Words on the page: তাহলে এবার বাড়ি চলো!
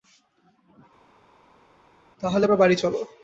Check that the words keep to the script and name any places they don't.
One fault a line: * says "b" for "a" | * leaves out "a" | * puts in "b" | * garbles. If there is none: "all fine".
all fine